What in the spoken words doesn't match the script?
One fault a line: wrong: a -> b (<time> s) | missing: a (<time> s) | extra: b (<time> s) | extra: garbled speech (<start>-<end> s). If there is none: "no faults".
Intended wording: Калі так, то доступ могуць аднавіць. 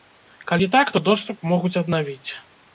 no faults